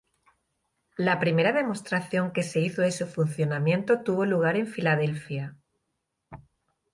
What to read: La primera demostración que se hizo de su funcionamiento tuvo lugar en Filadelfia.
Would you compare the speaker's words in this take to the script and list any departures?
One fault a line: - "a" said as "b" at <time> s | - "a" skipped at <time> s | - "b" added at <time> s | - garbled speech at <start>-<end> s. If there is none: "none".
none